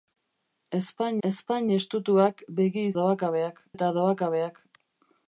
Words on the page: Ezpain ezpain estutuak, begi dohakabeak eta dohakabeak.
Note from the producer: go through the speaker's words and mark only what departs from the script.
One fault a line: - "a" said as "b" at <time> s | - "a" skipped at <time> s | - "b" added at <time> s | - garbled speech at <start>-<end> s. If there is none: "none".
none